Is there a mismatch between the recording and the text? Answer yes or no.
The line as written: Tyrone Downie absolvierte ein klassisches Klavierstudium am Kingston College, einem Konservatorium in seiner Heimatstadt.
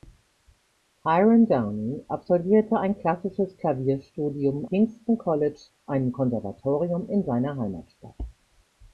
yes